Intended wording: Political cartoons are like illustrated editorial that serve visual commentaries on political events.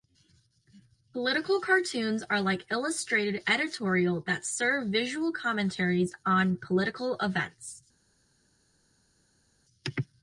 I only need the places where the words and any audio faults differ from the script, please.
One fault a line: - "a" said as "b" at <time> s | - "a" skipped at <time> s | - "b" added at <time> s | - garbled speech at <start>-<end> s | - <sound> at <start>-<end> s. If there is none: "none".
none